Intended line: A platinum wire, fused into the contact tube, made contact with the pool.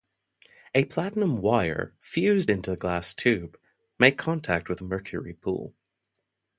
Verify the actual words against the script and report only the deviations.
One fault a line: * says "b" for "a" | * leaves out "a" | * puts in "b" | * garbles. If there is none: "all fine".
* says "glass" for "contact"
* puts in "mercury"